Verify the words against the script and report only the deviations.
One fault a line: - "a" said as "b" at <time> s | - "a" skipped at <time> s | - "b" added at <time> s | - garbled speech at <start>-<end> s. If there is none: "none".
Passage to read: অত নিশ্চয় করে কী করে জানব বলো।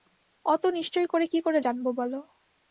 none